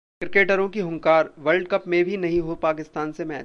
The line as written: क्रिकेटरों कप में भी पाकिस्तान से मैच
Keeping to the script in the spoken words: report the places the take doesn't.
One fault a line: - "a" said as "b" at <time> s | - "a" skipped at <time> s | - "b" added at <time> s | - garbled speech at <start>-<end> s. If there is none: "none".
- "की हुंकार वर्ल्ड" added at 0.7 s
- "नहीं हो" added at 2.2 s